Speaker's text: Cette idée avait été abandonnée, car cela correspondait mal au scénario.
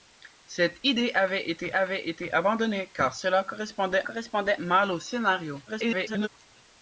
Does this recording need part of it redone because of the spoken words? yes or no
yes